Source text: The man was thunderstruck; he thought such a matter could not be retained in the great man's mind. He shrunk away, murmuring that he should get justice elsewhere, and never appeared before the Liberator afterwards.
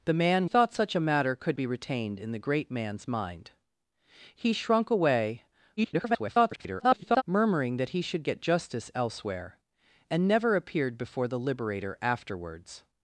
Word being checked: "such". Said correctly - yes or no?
yes